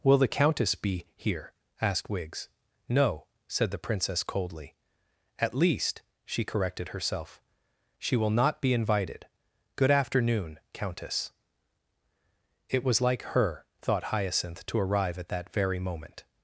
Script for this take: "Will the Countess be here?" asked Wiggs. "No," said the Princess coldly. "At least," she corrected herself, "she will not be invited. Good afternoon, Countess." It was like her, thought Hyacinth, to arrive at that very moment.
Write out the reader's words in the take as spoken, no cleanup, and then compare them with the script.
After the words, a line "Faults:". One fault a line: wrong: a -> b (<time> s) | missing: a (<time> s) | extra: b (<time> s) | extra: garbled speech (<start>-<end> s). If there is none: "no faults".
"Will the Countess be here?" asked Wiggs. "No," said the Princess coldly. "At least," she corrected herself, "she will not be invited. Good afternoon, Countess." It was like her, thought Hyacinth, to arrive at that very moment.
Faults:
no faults